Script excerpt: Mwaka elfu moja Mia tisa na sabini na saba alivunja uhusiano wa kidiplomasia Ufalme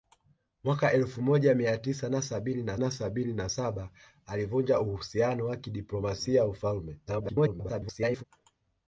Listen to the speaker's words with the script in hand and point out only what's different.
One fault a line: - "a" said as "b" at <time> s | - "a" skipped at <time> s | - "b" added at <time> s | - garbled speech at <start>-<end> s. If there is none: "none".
- "na sabini na" added at 2.8 s
- garbled speech at 7.1-8.2 s